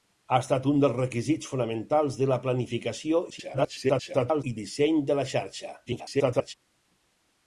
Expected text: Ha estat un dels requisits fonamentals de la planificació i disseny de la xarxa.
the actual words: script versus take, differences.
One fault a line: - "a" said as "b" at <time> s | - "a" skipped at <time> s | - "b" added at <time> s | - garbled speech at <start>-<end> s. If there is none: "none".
- garbled speech at 3.3-4.4 s
- garbled speech at 5.9-6.5 s